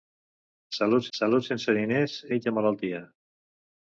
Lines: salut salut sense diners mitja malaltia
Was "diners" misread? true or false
false